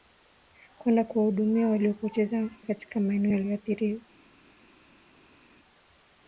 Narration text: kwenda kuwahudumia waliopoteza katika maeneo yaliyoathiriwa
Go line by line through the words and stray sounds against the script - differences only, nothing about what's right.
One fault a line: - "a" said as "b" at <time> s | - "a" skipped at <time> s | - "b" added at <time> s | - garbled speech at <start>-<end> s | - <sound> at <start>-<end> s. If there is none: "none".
none